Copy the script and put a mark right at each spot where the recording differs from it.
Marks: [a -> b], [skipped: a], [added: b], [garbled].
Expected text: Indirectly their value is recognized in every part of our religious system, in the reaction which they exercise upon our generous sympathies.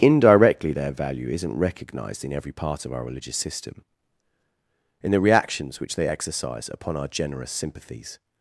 Indirectly their value [is -> isn't] recognized in every part of our religious system, in the [reaction -> reactions] which they exercise upon our generous sympathies.